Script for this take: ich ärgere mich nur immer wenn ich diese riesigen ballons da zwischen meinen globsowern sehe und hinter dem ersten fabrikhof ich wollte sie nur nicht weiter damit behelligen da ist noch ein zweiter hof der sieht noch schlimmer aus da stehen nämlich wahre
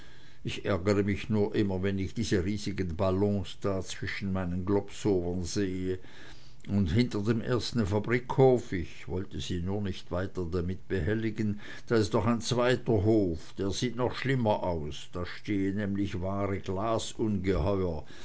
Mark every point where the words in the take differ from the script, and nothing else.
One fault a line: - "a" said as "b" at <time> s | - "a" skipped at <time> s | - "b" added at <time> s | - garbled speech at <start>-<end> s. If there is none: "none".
none